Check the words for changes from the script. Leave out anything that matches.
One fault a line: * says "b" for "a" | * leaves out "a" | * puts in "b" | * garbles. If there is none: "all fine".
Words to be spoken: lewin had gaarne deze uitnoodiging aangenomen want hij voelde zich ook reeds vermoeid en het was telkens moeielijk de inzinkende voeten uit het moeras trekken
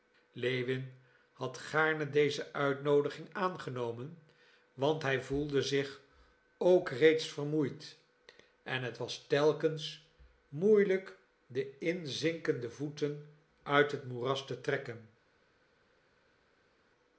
* puts in "te"